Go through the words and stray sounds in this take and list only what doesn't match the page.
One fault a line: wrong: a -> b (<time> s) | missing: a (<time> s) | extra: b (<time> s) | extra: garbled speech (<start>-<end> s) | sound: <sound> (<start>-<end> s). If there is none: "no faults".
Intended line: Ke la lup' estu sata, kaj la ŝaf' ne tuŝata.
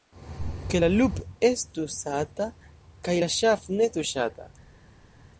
no faults